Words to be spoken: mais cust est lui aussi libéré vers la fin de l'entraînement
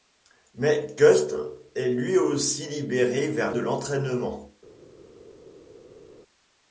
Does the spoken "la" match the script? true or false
false